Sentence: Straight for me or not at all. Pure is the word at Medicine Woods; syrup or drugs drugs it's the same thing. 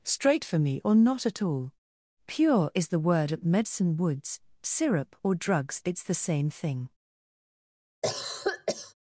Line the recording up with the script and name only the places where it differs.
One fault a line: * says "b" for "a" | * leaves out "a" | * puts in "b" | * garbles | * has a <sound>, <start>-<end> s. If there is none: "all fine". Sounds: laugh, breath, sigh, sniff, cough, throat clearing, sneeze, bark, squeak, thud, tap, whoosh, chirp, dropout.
* leaves out "drugs"
* has a cough, 8.0-8.9 s